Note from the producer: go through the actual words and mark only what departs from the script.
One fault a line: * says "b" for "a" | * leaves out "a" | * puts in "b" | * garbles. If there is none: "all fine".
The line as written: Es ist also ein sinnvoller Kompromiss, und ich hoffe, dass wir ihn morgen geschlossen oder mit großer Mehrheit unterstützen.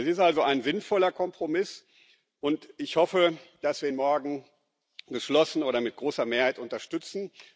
all fine